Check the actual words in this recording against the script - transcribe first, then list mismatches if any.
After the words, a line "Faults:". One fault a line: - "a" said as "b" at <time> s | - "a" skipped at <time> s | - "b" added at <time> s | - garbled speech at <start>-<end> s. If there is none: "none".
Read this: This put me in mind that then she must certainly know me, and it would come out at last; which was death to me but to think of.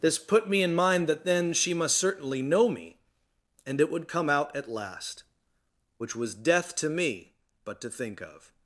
This put me in mind that then she must certainly know me, and it would come out at last; which was death to me but to think of.
Faults:
none